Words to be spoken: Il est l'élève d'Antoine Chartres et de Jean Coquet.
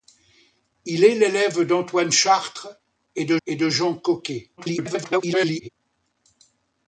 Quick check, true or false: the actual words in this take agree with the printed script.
false